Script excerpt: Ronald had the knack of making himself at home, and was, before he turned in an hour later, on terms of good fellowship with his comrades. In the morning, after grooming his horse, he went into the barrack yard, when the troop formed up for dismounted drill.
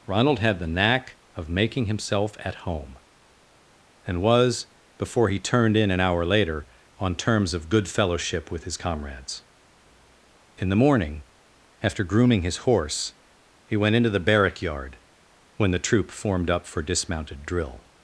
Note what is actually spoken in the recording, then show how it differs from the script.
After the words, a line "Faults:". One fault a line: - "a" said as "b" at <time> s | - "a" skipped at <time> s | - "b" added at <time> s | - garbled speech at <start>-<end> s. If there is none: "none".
Ronald had the knack of making himself at home, and was, before he turned in an hour later, on terms of good fellowship with his comrades. In the morning, after grooming his horse, he went into the barrack yard, when the troop formed up for dismounted drill.
Faults:
none